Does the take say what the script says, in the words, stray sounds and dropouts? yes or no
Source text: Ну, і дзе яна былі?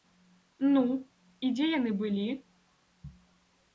no